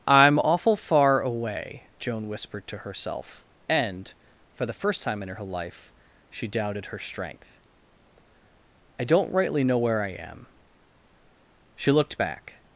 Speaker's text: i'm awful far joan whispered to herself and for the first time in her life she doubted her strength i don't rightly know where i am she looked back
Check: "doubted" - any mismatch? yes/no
no